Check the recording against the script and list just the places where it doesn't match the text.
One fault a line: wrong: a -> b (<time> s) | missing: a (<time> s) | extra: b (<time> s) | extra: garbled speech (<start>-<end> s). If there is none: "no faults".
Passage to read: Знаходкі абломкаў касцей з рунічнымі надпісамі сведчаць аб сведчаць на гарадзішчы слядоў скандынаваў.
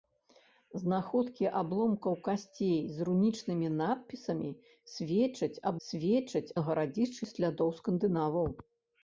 no faults